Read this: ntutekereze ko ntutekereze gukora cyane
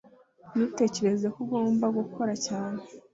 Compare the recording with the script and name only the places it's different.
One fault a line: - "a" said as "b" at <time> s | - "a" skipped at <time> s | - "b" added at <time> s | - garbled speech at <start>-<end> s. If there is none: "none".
- "ntutekereze" said as "ugomba" at 1.4 s